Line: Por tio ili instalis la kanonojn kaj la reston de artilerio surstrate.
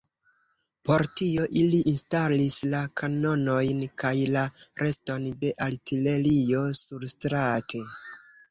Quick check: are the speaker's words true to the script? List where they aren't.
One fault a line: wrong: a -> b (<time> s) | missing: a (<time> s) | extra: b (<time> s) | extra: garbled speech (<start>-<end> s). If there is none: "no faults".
no faults